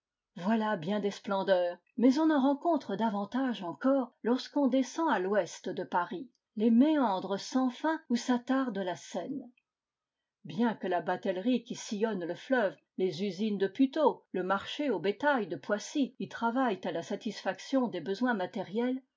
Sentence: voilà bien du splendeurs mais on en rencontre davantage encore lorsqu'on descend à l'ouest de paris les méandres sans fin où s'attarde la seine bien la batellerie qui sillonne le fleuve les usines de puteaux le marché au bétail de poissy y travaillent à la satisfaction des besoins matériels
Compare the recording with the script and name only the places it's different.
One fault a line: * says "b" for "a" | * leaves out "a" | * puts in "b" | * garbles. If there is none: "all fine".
* says "des" for "du"
* puts in "que"